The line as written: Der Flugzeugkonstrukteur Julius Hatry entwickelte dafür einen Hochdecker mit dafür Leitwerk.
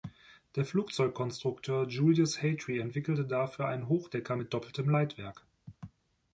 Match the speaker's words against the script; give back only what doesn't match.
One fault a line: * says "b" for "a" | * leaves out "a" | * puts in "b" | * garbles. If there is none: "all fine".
* says "doppeltem" for "dafür"